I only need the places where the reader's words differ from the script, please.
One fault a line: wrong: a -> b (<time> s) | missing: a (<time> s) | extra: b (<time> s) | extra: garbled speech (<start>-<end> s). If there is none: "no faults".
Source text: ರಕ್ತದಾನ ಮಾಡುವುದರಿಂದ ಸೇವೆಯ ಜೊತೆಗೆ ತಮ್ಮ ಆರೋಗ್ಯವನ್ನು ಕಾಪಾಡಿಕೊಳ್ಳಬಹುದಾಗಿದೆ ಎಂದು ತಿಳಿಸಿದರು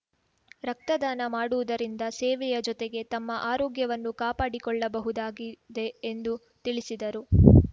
no faults